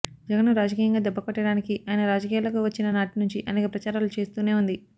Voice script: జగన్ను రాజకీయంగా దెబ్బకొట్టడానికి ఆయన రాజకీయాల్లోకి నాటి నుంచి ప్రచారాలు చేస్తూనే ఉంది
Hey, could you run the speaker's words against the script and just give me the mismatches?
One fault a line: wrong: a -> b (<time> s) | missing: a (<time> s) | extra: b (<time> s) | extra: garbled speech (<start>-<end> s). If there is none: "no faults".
extra: వచ్చిన (2.6 s)
extra: అనేక (3.5 s)